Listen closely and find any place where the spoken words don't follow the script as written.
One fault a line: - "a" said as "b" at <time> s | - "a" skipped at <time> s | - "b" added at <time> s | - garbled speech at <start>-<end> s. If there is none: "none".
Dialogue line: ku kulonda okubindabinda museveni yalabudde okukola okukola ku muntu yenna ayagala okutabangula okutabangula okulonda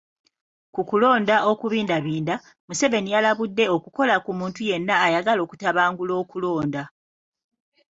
- "okukola" skipped at 4.2 s
- "okutabangula" skipped at 6.1 s